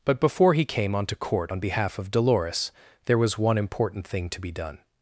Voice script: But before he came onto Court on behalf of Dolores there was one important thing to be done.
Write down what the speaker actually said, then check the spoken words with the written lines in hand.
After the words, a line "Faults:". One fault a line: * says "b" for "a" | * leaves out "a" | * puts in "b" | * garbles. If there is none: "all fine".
But before he came onto Court on behalf of Dolores there was one important thing to be done.
Faults:
all fine